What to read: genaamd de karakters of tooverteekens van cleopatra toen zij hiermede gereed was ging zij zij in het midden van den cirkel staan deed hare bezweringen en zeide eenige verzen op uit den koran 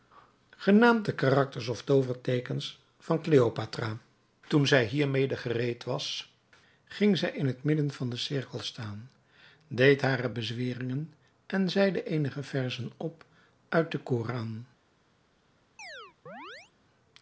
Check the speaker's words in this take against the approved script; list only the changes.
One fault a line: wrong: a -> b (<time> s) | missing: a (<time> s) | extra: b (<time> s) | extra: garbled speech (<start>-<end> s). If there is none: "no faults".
missing: zij (7.3 s)